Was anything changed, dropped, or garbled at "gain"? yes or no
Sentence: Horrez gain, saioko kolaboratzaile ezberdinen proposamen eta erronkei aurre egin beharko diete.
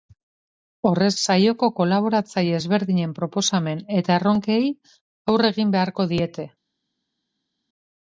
yes